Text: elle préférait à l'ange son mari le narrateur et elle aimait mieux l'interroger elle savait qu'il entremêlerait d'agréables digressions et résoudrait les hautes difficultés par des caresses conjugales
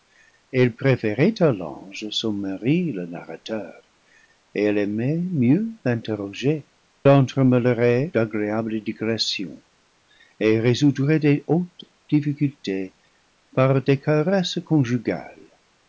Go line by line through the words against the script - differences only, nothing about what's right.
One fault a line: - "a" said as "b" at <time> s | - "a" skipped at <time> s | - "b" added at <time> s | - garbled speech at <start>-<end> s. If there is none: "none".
- "elle savait qu'il" skipped at 6.7 s